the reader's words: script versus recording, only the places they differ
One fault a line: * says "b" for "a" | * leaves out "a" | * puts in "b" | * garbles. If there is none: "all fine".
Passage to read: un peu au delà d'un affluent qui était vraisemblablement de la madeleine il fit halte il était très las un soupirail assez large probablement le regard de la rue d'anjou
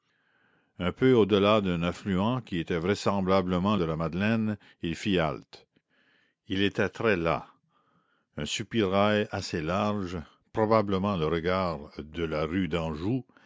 all fine